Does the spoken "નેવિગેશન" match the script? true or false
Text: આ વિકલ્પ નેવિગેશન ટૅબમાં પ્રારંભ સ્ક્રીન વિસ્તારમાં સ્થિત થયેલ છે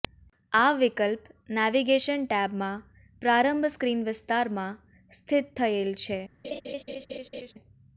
true